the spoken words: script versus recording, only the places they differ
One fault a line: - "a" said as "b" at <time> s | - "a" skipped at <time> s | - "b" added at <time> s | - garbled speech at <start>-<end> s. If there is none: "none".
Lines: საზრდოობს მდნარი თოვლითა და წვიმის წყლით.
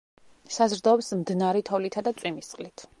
none